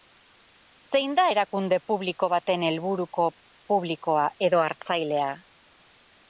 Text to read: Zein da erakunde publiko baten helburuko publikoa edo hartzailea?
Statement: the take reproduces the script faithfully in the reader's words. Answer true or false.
true